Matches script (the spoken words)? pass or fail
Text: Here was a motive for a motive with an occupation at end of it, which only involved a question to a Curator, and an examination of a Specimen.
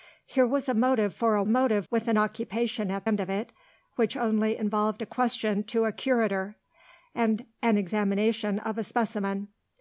pass